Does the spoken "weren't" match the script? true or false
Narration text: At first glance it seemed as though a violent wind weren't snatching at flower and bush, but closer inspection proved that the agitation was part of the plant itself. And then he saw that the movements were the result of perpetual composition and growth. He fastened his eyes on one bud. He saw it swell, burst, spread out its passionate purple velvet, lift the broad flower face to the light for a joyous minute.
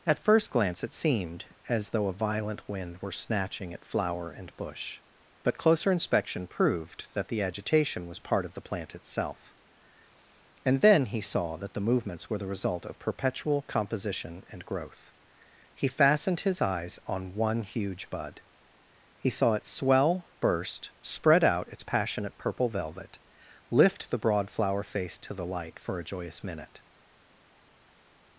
false